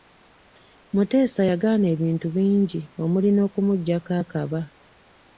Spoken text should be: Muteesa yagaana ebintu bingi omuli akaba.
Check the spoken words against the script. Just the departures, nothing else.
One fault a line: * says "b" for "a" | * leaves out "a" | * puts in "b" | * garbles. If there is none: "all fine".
* puts in "n'okumuggyako"